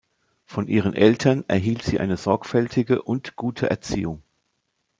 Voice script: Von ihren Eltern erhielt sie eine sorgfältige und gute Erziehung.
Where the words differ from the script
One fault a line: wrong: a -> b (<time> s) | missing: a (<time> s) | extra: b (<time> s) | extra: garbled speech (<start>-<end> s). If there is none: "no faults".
no faults